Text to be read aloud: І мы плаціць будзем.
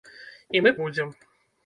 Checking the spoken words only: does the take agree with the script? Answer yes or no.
no